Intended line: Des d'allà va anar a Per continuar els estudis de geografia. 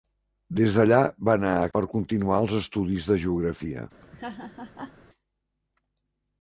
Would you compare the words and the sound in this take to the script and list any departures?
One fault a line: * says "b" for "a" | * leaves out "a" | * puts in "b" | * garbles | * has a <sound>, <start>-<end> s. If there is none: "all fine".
* has a laugh, 4.0-4.9 s